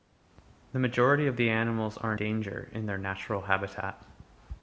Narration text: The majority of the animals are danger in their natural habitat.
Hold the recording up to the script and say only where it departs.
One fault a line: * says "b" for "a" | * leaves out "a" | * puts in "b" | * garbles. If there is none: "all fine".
all fine